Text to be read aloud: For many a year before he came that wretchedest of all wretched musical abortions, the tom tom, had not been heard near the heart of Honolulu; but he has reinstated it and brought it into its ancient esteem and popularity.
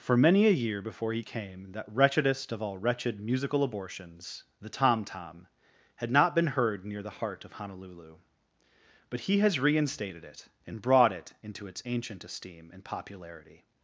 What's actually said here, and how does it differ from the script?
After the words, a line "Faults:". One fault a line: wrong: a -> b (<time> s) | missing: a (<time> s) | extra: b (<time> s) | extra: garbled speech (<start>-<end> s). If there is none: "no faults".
For many a year before he came that wretchedest of all wretched musical abortions, the tom tom, had not been heard near the heart of Honolulu; but he has reinstated it and brought it into its ancient esteem and popularity.
Faults:
no faults